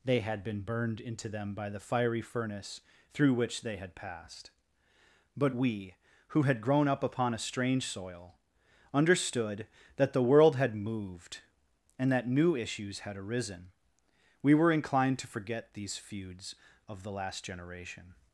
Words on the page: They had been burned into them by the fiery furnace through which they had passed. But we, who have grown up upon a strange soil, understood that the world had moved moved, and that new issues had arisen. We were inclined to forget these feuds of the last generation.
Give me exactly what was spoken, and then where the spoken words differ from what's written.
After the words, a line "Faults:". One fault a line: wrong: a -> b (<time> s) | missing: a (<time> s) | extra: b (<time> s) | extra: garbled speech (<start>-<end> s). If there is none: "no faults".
They had been burned into them by the fiery furnace through which they had passed. But we, who had grown up upon a strange soil, understood that the world had moved, and that new issues had arisen. We were inclined to forget these feuds of the last generation.
Faults:
wrong: have -> had (6.4 s)
missing: moved (11.4 s)